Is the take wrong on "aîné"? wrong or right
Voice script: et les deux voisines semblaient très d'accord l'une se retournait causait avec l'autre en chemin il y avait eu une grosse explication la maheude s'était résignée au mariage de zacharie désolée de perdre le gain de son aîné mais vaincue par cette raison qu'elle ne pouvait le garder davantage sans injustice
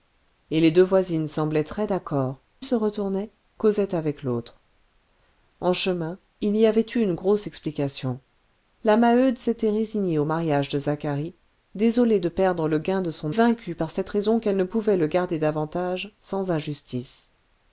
wrong